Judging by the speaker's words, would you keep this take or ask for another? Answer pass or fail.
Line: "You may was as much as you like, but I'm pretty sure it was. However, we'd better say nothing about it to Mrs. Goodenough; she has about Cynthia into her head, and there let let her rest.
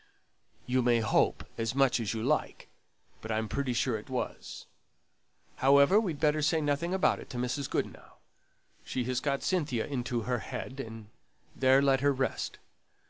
fail